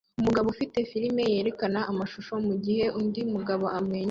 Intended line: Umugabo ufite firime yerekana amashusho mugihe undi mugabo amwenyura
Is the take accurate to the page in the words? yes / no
yes